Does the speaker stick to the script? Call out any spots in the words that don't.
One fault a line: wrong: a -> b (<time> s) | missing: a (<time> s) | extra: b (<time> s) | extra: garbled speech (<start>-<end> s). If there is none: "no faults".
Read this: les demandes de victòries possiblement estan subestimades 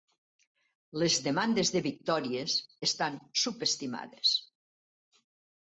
missing: possiblement (2.5 s)